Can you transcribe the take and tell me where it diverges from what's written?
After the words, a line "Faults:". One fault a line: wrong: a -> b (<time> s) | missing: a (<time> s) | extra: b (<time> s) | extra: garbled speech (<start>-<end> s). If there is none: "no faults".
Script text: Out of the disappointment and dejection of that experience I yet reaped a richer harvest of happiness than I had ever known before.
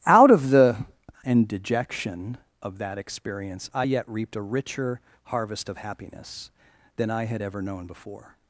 Out of the and dejection of that experience I yet reaped a richer harvest of happiness than I had ever known before.
Faults:
missing: disappointment (0.8 s)